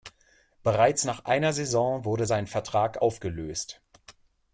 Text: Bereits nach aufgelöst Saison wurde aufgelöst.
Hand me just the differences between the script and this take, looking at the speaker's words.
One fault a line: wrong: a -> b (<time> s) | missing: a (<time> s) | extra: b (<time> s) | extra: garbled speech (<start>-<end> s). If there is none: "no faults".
wrong: aufgelöst -> einer (1.2 s)
extra: sein Vertrag (2.2 s)